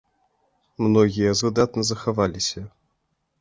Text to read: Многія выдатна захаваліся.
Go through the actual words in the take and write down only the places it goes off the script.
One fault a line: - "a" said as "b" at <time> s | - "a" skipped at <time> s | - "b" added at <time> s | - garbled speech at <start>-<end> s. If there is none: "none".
none